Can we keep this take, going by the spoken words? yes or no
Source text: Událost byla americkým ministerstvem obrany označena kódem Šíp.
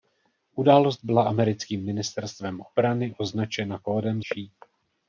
yes